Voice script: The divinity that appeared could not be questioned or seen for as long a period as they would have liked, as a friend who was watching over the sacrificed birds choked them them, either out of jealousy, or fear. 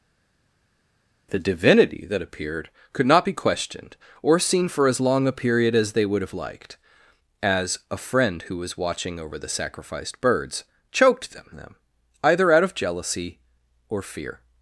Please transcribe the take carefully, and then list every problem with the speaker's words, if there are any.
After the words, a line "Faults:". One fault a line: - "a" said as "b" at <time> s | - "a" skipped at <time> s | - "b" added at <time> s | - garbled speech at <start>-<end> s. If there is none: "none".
The divinity that appeared could not be questioned or seen for as long a period as they would have liked, as a friend who was watching over the sacrificed birds choked them them, either out of jealousy, or fear.
Faults:
none